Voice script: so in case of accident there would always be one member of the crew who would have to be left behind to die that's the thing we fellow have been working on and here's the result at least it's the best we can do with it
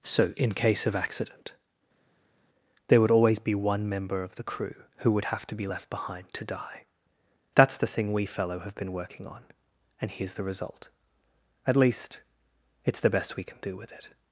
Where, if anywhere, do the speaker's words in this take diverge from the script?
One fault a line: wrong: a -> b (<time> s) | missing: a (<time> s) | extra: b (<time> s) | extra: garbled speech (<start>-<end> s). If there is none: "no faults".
no faults